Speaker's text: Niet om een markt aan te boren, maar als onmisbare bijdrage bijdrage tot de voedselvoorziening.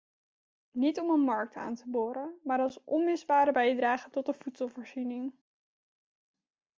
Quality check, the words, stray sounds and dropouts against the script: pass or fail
fail